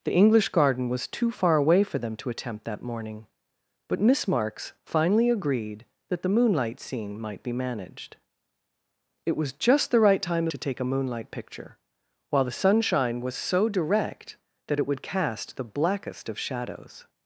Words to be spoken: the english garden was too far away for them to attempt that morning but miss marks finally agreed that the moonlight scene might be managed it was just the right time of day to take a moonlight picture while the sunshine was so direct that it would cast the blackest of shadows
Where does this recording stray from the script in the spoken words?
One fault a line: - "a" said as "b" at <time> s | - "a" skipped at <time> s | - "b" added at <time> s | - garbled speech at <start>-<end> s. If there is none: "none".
- "of day" skipped at 10.5 s